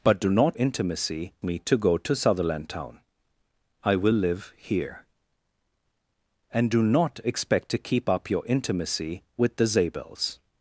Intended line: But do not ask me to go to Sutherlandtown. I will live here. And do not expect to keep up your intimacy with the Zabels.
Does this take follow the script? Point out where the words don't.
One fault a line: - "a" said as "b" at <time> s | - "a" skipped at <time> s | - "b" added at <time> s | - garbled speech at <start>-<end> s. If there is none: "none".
- "ask" said as "intimacy" at 0.6 s